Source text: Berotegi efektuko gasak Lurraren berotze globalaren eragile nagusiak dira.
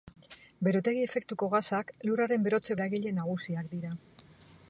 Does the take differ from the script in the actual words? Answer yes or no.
yes